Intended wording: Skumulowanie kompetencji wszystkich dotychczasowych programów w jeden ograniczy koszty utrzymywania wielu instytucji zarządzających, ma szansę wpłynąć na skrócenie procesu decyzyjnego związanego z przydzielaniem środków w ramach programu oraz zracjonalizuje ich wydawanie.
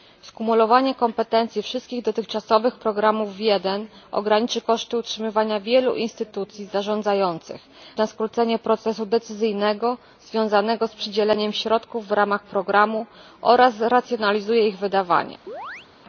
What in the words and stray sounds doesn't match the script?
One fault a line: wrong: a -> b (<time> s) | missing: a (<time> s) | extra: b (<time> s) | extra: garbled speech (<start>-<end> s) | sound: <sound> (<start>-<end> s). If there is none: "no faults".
missing: ma szansę wpłynąć (7.6 s)
sound: chirp (15.5-15.9 s)